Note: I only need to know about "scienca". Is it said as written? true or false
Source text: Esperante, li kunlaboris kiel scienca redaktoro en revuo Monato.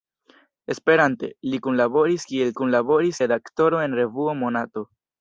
false